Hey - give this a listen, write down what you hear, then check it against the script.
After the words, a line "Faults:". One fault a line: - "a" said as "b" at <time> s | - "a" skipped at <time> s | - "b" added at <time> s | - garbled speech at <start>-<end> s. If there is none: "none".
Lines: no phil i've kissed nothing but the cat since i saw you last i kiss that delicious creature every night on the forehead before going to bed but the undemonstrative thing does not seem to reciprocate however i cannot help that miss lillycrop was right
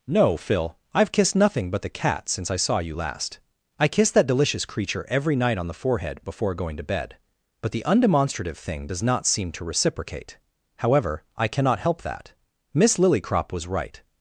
no phil i've kissed nothing but the cat since i saw you last i kiss that delicious creature every night on the forehead before going to bed but the undemonstrative thing does not seem to reciprocate however i cannot help that miss lillycrop was right
Faults:
none